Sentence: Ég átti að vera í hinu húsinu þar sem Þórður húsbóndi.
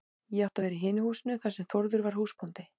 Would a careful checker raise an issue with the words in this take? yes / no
yes